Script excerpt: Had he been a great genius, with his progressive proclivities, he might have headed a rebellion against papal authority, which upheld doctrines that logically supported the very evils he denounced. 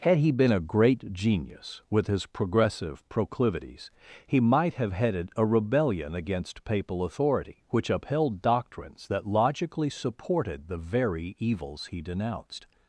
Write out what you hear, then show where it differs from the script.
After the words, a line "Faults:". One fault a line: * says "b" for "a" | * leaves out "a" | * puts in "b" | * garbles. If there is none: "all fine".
Had he been a great genius, with his progressive proclivities, he might have headed a rebellion against papal authority, which upheld doctrines that logically supported the very evils he denounced.
Faults:
all fine